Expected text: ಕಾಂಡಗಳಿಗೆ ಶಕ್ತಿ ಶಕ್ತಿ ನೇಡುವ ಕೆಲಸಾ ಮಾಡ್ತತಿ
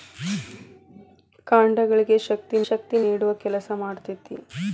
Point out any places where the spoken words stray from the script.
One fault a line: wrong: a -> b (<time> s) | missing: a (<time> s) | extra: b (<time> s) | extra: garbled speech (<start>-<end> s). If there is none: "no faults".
no faults